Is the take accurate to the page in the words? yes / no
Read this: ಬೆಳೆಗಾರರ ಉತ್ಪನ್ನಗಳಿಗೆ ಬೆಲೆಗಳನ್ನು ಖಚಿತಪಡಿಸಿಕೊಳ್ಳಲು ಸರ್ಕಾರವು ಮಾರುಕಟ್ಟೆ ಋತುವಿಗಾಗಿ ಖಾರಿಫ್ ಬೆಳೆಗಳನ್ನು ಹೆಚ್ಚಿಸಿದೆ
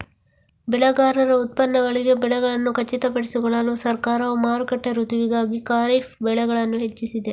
yes